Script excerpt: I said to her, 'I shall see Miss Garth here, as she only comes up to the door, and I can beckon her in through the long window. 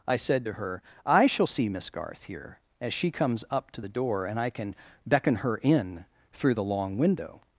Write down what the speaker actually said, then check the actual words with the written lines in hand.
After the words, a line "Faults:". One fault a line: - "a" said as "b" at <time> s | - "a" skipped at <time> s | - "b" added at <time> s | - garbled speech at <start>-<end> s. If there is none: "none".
I said to her, 'I shall see Miss Garth here, as she comes up to the door, and I can beckon her in through the long window.
Faults:
- "only" skipped at 3.1 s